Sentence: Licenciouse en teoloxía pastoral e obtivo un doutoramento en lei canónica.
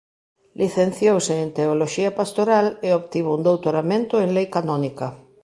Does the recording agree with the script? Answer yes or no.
yes